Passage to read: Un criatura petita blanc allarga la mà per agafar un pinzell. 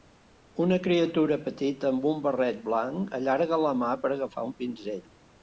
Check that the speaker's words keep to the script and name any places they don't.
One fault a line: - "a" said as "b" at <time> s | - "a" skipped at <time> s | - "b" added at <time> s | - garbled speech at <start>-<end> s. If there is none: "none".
- "Un" said as "Una" at 0.6 s
- "amb un barret" added at 1.9 s